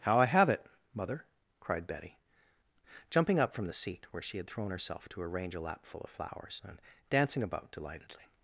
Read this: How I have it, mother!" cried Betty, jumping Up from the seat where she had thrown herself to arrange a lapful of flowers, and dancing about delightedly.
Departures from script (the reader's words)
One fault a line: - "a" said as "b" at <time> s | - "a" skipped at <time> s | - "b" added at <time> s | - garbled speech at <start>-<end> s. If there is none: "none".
none